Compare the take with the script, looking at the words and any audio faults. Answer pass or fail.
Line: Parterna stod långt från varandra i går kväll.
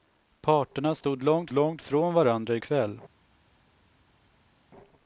fail